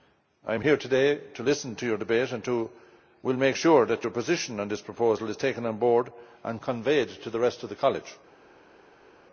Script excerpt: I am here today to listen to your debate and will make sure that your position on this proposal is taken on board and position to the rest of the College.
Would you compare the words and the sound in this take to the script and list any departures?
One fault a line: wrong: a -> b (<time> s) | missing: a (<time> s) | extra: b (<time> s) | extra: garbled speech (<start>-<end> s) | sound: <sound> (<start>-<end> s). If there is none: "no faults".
wrong: position -> conveyed (6.6 s)